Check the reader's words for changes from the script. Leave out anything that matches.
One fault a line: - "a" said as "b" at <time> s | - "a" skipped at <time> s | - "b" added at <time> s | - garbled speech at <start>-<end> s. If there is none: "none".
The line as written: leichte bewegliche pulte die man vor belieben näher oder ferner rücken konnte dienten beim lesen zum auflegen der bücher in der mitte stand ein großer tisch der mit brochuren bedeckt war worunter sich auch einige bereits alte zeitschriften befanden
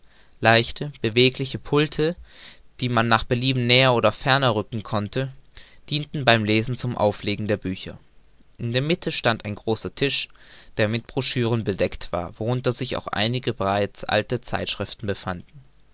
- "vor" said as "nach" at 3.1 s